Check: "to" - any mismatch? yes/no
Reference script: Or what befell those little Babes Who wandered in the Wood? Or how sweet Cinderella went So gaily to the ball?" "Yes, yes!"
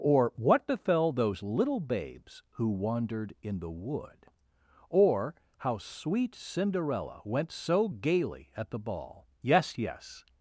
yes